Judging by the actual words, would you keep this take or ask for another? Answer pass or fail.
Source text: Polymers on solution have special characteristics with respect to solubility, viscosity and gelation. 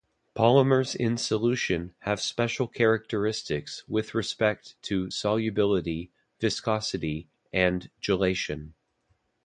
fail